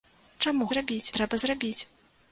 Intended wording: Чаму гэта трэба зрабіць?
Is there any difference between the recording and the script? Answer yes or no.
yes